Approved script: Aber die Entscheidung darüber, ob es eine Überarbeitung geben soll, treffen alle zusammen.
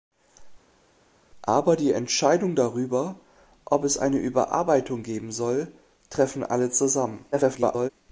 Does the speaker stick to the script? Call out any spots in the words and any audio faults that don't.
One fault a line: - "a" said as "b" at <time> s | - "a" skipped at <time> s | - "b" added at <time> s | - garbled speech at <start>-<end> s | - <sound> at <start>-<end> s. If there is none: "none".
- garbled speech at 7.3-7.9 s